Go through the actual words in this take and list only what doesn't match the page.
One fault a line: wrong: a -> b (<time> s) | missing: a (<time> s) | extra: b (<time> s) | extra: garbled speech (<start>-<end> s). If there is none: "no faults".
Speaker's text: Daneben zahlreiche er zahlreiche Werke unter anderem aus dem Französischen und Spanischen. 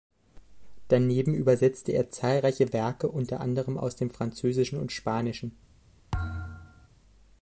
wrong: zahlreiche -> übersetzte (1.4 s)